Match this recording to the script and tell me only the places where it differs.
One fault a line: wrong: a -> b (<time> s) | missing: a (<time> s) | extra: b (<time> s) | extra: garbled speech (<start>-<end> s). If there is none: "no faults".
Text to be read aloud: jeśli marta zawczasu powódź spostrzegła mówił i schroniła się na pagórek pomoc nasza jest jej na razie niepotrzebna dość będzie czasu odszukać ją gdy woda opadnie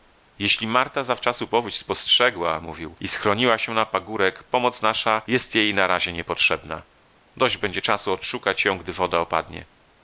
no faults